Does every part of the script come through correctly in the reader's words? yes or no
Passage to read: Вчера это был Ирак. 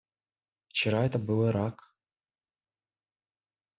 yes